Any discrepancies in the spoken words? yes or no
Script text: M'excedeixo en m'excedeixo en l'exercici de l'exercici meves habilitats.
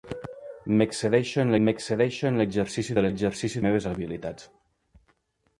no